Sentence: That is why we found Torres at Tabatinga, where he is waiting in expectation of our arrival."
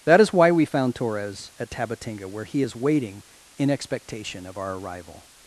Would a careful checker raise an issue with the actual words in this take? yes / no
no